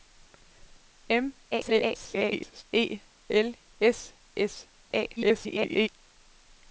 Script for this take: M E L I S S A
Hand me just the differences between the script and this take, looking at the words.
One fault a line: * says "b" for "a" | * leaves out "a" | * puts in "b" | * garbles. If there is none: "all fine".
* garbles
* leaves out "I"
* garbles